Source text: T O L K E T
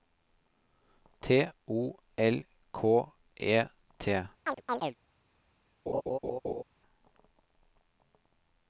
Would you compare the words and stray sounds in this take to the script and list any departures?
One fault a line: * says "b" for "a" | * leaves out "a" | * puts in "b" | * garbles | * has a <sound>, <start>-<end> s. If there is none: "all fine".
* has a chirp, 4.4-5.0 s
* has a laugh, 5.9-6.6 s